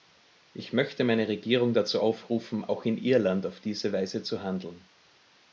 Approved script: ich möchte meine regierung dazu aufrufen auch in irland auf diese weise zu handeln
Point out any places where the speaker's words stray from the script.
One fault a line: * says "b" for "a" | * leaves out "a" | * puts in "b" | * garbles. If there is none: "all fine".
all fine